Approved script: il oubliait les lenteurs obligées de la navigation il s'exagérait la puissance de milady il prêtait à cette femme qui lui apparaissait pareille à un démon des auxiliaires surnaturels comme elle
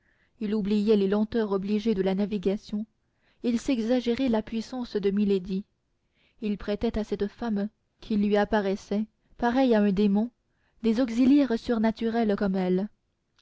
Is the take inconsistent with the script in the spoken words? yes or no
no